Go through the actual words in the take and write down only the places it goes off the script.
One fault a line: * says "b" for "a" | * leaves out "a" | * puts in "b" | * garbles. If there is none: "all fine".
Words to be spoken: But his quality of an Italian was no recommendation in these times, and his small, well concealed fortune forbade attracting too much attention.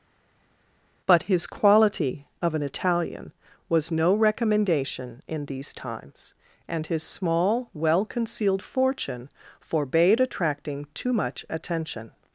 all fine